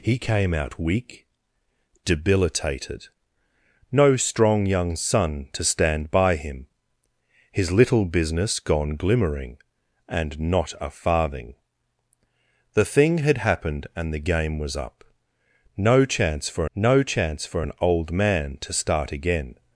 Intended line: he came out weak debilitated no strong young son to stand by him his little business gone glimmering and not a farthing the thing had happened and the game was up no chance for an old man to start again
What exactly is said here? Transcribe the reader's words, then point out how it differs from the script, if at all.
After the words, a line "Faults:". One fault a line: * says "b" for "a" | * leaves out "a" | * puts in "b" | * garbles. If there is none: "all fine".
he came out weak debilitated no strong young son to stand by him his little business gone glimmering and not a farthing the thing had happened and the game was up no chance for no chance for an old man to start again
Faults:
* puts in "no chance for"